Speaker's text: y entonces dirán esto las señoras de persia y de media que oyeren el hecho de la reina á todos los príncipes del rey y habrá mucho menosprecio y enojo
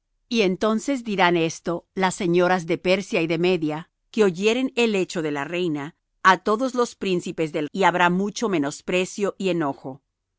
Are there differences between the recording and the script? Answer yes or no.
yes